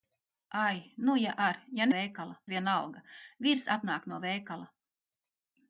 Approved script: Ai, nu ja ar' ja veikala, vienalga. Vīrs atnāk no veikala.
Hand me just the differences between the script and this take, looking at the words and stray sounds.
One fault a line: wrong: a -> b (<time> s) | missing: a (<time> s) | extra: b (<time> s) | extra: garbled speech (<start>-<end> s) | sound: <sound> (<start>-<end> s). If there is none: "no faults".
no faults